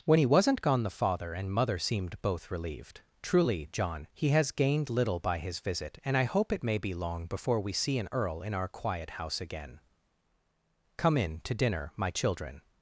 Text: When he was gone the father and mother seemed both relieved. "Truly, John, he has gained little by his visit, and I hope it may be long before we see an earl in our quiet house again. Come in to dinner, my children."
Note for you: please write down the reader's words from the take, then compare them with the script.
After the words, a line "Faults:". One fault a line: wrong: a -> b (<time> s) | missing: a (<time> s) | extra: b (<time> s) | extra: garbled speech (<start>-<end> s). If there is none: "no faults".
When he wasn't gone the father and mother seemed both relieved. "Truly, John, he has gained little by his visit, and I hope it may be long before we see an earl in our quiet house again. Come in to dinner, my children."
Faults:
wrong: was -> wasn't (0.2 s)